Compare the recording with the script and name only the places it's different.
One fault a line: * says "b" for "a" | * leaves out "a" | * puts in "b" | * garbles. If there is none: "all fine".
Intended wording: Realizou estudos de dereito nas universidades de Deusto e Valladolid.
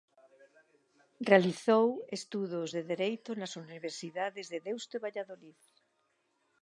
all fine